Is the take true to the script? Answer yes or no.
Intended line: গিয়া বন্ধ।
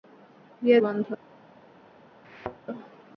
yes